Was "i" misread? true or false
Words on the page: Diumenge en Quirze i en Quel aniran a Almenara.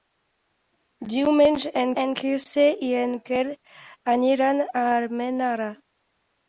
false